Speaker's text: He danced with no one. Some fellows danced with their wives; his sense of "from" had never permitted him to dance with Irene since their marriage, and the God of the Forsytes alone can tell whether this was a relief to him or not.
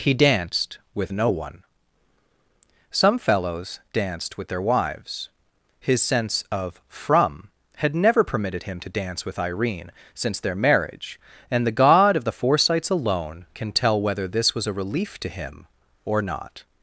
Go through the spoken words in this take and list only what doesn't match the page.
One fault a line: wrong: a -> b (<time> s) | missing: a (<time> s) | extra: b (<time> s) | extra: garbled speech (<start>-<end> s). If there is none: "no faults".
no faults